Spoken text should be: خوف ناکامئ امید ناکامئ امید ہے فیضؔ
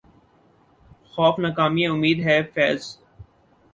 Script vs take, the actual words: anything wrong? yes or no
yes